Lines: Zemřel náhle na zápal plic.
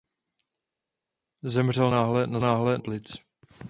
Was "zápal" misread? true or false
true